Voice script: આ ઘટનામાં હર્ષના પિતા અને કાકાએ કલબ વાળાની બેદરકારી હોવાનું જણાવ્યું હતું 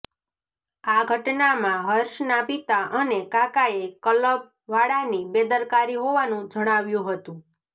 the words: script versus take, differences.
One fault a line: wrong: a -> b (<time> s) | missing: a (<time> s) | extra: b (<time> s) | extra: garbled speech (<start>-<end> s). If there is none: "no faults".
no faults